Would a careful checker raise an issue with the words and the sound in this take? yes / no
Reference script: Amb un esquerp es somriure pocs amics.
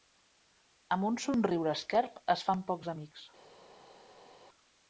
yes